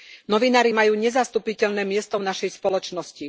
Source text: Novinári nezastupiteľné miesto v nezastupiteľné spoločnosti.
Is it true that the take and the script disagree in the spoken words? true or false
true